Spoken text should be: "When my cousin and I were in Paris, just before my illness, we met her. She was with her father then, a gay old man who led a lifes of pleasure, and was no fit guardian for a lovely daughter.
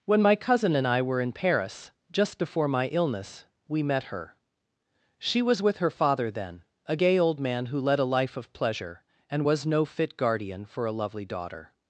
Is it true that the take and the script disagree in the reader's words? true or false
true